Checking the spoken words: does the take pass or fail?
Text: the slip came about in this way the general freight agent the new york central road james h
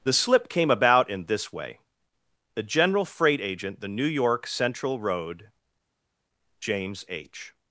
pass